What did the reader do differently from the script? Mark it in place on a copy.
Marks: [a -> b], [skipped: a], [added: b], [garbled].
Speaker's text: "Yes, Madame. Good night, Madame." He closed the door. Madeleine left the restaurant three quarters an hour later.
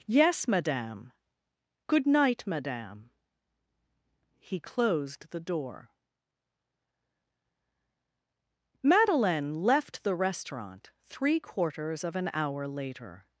"Yes, Madame. Good night, Madame." He closed the door. Madeleine left the restaurant three quarters [added: of] an hour later.